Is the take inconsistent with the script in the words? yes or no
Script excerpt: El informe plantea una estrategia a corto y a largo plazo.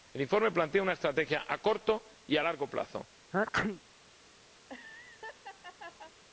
no